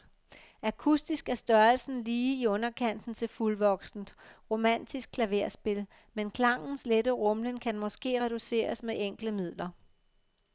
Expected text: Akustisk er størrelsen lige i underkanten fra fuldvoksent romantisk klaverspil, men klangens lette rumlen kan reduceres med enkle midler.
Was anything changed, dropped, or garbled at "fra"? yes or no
yes